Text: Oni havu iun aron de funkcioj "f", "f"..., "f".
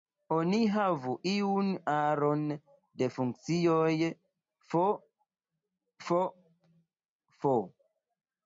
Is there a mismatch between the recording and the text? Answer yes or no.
no